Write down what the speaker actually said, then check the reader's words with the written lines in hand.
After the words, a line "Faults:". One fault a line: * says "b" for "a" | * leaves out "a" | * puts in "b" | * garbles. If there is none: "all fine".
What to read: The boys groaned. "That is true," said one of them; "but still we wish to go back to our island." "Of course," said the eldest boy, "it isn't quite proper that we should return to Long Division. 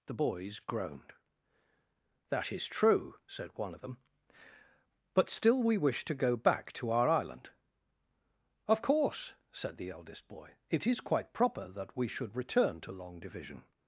The boys groaned. "That is true," said one of them; "but still we wish to go back to our island." "Of course," said the eldest boy, "it is quite proper that we should return to Long Division.
Faults:
* says "is" for "isn't"